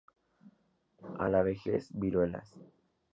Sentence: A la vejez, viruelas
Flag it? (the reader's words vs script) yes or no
no